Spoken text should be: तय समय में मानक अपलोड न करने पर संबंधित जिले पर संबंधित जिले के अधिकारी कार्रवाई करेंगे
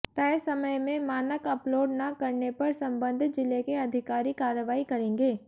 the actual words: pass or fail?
fail